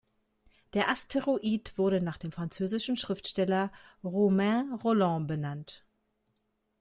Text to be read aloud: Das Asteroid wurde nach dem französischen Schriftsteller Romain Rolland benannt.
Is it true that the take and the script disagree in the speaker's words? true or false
true